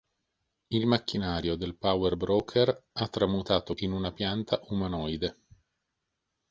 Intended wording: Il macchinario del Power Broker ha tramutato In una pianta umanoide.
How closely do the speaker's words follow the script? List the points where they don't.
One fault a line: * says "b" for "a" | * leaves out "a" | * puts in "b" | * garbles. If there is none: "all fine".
all fine